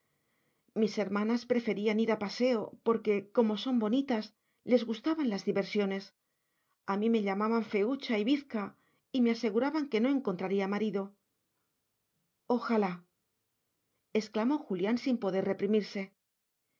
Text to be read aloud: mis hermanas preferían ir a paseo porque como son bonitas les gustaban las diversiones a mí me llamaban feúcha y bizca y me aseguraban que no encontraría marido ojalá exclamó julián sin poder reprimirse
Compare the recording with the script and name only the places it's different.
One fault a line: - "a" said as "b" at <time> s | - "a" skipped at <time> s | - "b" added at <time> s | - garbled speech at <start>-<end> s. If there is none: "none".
none